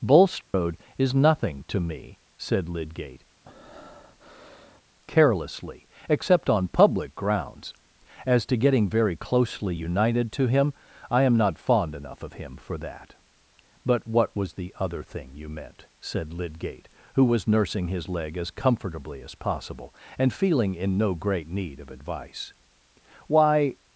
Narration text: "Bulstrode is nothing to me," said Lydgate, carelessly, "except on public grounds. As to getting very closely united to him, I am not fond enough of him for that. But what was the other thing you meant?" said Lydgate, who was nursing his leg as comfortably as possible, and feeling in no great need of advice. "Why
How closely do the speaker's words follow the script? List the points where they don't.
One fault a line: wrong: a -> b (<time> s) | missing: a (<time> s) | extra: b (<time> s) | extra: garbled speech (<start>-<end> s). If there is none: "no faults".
no faults